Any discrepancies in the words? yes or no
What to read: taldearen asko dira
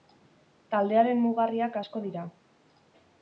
yes